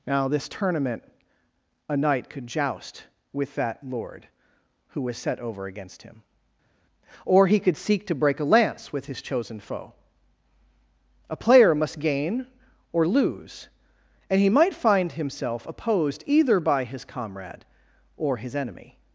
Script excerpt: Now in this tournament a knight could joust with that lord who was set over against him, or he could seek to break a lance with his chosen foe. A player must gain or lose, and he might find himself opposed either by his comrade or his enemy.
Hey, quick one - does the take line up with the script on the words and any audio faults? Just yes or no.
no